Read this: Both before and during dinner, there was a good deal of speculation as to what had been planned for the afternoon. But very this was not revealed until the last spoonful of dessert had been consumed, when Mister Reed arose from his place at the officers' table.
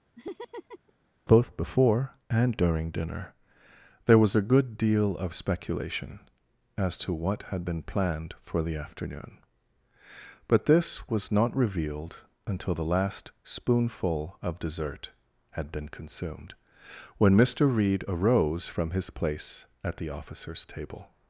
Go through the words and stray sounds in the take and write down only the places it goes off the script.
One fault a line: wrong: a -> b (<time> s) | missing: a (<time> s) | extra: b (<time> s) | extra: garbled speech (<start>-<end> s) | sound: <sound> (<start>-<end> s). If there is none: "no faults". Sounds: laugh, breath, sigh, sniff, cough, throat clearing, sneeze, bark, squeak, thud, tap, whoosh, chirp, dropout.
sound: laugh (0.2-0.9 s)
missing: very (10.6 s)